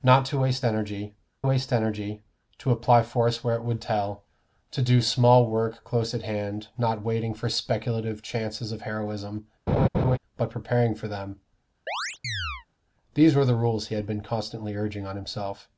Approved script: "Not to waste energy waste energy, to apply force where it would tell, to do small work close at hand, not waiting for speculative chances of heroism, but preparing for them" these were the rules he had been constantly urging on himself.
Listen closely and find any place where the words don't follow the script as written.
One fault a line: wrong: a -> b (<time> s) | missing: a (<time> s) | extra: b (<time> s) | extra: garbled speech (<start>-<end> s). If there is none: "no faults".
no faults